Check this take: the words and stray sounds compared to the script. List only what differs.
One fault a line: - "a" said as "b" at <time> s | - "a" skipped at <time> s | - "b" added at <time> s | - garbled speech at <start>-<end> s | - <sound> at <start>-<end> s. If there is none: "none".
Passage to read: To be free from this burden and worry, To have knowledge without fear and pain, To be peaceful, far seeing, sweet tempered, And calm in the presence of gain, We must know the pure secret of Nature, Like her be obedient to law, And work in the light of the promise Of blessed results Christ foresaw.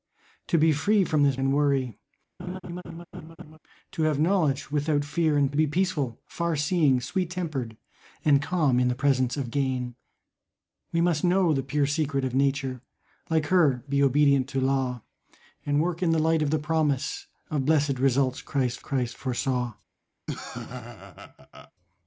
- "burden" skipped at 1.4 s
- laugh at 2.4-3.6 s
- "pain To" skipped at 5.5 s
- "Christ" added at 18.8 s
- laugh at 20.3-21.7 s